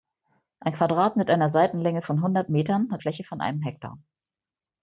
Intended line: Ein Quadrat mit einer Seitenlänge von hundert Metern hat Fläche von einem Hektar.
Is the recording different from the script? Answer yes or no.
no